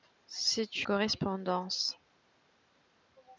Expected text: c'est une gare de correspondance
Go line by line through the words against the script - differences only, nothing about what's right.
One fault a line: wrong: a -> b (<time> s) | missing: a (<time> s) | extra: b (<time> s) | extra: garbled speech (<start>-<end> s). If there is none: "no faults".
missing: une gare de (0.9 s)